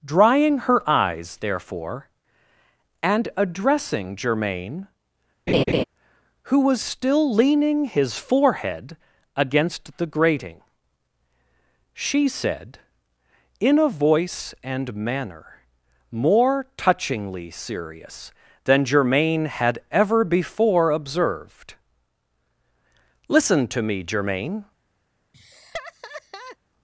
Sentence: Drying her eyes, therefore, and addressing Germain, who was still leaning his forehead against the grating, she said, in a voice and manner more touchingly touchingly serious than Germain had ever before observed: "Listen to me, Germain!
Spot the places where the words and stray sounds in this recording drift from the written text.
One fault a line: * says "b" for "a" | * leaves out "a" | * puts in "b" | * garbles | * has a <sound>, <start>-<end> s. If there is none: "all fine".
* has a laugh, 5.5-5.8 s
* leaves out "touchingly"
* has a laugh, 25.3-26.6 s